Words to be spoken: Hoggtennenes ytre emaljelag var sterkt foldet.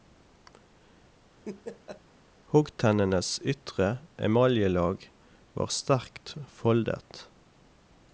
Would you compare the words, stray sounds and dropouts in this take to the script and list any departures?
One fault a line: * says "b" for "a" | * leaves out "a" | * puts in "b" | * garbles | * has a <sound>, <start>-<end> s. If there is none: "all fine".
* has a laugh, 1.4-2.0 s